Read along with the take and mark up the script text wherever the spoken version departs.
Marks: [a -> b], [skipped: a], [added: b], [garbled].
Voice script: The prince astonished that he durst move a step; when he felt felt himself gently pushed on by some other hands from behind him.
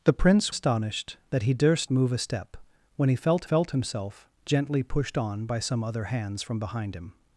The prince astonished that he durst move a step; when he felt felt himself gently pushed on by some other hands from behind him.